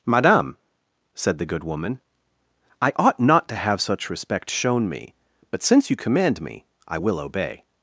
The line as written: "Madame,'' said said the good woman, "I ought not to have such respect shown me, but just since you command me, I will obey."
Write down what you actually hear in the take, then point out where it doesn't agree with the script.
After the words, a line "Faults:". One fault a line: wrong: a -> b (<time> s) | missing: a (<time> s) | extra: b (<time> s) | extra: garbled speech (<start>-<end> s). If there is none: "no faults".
"Madame,'' said the good woman, "I ought not to have such respect shown me, but since you command me, I will obey."
Faults:
missing: said (1.4 s)
missing: just (5.6 s)